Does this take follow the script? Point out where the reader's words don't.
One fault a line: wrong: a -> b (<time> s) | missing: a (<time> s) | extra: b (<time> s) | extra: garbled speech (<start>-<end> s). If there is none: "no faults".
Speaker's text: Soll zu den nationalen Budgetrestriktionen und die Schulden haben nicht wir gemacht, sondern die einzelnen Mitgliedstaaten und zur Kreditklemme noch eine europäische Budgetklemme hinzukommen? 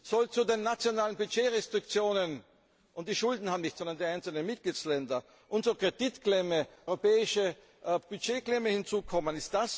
missing: wir gemacht (3.8 s)
missing: noch eine (6.7 s)